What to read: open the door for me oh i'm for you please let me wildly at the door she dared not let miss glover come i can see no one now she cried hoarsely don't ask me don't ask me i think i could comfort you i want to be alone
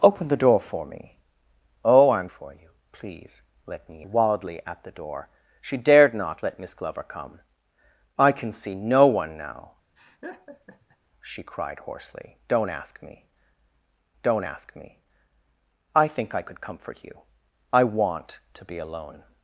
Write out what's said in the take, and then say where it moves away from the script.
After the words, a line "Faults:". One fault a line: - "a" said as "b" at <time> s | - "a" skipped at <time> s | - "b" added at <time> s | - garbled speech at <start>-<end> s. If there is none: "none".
open the door for me oh i'm for you please let me wildly at the door she dared not let miss glover come i can see no one now she cried hoarsely don't ask me don't ask me i think i could comfort you i want to be alone
Faults:
none